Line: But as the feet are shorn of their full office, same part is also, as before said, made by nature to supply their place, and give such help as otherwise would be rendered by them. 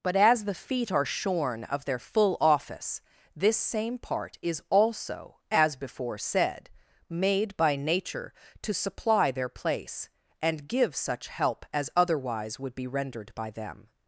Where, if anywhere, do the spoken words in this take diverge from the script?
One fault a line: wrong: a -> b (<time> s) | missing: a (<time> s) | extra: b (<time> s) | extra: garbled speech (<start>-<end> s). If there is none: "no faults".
extra: this (3.4 s)